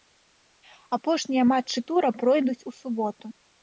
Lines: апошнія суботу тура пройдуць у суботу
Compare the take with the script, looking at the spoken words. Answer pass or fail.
fail